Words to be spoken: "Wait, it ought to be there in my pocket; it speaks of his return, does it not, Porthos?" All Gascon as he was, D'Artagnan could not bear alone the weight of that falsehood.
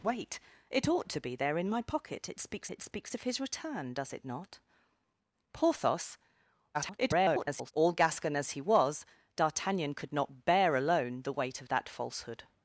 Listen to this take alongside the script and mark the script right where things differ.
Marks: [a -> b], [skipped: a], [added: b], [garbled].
"Wait, it ought to be there in my pocket; it speaks [added: it speaks] of his return, does it not, Porthos?" [garbled] All Gascon as he was, D'Artagnan could not bear alone the weight of that falsehood.